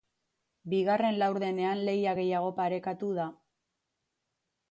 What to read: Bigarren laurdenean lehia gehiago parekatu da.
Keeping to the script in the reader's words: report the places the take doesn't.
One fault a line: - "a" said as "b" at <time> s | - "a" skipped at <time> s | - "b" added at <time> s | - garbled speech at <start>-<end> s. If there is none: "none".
none